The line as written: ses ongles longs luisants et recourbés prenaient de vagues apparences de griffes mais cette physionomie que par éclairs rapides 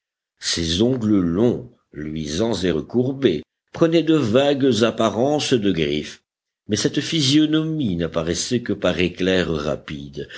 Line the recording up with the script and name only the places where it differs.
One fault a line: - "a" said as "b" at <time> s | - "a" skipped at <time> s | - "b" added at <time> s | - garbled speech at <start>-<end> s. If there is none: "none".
- "n'apparaissait" added at 8.0 s